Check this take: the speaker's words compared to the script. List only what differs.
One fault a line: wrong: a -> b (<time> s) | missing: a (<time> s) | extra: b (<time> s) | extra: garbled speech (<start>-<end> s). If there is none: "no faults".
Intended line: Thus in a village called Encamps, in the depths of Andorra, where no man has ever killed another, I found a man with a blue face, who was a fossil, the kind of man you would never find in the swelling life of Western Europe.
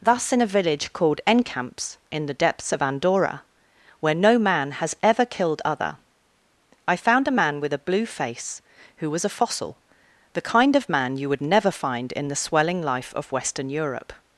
wrong: another -> other (5.6 s)